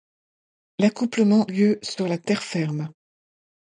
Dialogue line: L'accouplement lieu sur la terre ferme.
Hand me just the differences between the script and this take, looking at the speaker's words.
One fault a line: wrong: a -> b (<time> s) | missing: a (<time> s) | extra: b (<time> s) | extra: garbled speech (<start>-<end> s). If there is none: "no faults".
no faults